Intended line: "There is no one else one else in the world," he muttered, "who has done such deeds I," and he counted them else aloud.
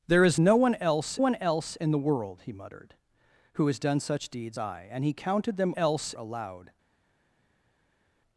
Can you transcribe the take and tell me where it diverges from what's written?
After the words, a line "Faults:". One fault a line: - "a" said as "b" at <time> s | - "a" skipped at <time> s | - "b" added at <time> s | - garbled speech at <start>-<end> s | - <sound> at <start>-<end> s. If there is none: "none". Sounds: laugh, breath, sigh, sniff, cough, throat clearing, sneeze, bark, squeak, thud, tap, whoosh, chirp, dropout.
"There is no one else one else in the world," he muttered, "who has done such deeds I," and he counted them else aloud.
Faults:
none